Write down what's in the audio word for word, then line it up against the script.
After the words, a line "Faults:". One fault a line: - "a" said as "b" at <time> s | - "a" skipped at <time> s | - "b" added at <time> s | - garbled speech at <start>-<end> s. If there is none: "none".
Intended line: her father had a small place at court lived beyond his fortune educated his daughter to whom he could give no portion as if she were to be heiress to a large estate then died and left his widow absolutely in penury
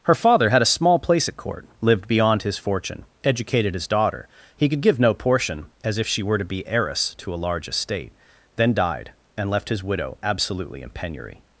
her father had a small place at court lived beyond his fortune educated his daughter he could give no portion as if she were to be heiress to a large estate then died and left his widow absolutely in penury
Faults:
- "to whom" skipped at 4.3 s